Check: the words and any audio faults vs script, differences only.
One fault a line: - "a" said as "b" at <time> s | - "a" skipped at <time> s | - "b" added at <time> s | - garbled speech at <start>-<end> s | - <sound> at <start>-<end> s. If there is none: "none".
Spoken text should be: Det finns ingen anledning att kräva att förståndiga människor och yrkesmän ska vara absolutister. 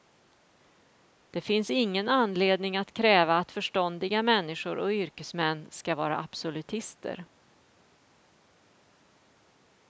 none